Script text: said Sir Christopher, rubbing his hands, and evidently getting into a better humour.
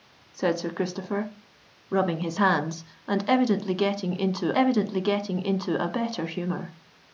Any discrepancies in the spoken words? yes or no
yes